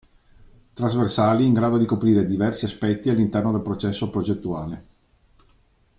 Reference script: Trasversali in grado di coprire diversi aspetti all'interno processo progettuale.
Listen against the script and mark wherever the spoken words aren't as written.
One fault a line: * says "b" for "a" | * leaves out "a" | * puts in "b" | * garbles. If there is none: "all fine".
* puts in "del"